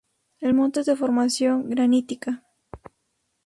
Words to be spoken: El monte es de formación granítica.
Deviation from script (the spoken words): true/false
false